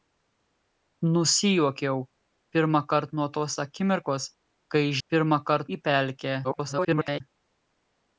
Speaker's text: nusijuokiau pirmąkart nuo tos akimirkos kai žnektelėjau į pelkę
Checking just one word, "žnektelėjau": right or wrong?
wrong